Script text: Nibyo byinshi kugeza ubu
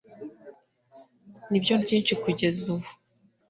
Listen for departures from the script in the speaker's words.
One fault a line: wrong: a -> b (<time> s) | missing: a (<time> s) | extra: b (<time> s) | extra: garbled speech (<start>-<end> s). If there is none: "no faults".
no faults